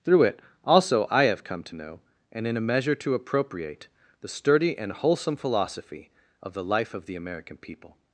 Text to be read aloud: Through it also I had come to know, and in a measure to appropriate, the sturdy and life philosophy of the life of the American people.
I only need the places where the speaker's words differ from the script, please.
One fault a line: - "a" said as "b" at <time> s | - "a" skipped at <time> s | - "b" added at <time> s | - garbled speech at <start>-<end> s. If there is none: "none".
- "had" said as "have" at 1.2 s
- "life" said as "wholesome" at 4.9 s